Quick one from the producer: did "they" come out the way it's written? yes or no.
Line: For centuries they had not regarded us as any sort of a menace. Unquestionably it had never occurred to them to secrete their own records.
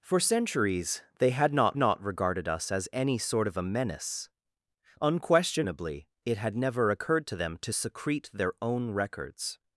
yes